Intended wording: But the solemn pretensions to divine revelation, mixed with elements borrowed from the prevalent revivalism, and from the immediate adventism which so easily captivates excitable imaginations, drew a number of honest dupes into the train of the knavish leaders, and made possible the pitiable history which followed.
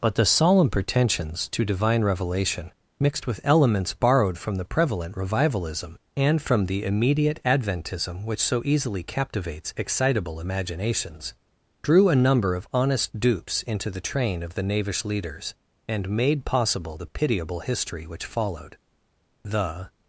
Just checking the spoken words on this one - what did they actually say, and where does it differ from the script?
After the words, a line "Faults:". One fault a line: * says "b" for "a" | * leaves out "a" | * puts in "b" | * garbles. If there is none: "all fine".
But the solemn pretensions to divine revelation, mixed with elements borrowed from the prevalent revivalism, and from the immediate adventism which so easily captivates excitable imaginations, drew a number of honest dupes into the train of the knavish leaders, and made possible the pitiable history which followed. The
Faults:
* puts in "The"